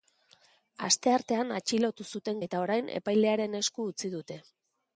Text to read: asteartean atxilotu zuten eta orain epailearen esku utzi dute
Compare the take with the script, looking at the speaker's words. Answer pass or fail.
pass